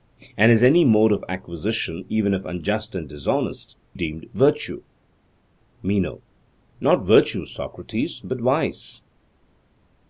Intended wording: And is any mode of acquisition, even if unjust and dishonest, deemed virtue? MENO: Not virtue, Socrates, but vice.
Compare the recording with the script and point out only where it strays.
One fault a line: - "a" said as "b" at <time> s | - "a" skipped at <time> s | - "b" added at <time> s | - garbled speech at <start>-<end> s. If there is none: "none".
none